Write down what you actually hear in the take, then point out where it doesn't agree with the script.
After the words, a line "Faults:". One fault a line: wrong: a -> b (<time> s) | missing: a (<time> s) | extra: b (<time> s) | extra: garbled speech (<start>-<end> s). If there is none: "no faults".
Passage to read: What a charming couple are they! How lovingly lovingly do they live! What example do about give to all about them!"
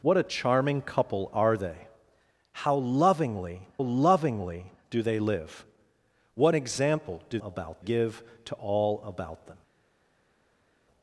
What a charming couple are they! How lovingly lovingly do they live! What example do about give to all about them!"
Faults:
no faults